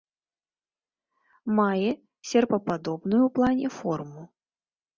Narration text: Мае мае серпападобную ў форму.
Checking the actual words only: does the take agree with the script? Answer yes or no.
no